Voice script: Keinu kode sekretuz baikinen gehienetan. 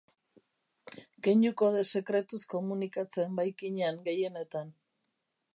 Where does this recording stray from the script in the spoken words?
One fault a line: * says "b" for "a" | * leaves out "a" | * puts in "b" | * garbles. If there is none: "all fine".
* puts in "komunikatzen"